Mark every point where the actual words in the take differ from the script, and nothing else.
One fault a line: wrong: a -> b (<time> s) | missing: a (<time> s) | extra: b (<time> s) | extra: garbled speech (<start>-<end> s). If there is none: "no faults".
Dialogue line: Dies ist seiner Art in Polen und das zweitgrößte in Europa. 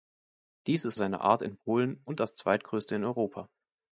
no faults